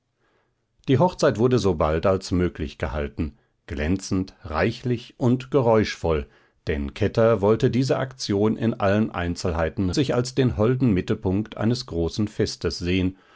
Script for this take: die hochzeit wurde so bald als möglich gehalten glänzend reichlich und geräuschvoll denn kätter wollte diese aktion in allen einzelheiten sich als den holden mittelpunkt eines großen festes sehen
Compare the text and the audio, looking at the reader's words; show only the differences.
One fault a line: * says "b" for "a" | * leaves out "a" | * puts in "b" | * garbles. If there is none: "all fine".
all fine